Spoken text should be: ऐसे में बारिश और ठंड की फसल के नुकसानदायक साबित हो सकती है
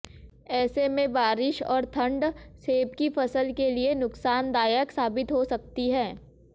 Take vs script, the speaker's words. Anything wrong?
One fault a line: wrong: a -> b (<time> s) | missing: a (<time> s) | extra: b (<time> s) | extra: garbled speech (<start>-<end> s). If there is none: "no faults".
extra: सेब (2.6 s)
extra: लिए (3.7 s)